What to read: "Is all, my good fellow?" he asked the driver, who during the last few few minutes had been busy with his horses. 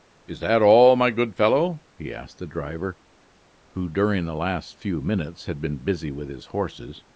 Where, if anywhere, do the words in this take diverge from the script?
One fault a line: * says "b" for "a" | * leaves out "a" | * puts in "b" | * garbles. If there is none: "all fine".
* puts in "that"
* leaves out "few"